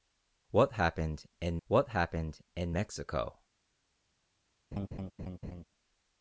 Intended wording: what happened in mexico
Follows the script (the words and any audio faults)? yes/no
no